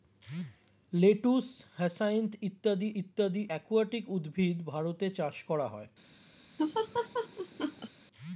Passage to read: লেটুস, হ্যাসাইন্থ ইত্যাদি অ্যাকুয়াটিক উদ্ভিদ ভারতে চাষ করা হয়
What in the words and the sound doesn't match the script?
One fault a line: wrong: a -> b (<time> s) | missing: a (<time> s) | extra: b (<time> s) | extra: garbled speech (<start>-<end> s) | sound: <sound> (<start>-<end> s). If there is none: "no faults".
extra: ইত্যাদি (3.0 s)
sound: laugh (6.6-7.9 s)